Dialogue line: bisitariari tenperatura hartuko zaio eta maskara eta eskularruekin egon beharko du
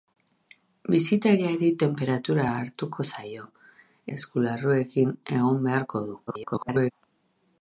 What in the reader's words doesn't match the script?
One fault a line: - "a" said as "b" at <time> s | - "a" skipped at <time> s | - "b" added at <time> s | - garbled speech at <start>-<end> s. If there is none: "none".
- "eta maskara eta" skipped at 3.4 s
- garbled speech at 6.3-6.9 s